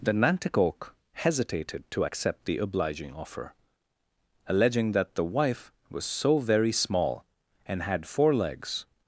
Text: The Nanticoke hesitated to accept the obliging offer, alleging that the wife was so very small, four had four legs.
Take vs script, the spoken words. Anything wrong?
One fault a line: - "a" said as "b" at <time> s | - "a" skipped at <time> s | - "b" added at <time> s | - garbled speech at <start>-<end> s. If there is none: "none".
- "four" said as "and" at 7.7 s